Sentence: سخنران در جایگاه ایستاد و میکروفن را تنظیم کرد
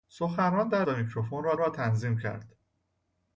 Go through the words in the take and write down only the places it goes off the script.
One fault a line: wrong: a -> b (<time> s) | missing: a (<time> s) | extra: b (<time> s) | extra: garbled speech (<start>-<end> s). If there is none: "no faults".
missing: جایگاه ایستاد (0.8 s)
extra: را (1.6 s)